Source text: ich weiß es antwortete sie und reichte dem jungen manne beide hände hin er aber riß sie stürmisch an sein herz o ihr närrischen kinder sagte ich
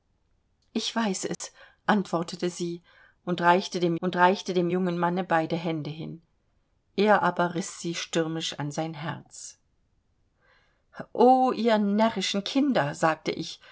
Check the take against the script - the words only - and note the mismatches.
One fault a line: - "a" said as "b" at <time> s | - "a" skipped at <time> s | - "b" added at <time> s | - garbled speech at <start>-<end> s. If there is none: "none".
- "und reichte dem" added at 4.0 s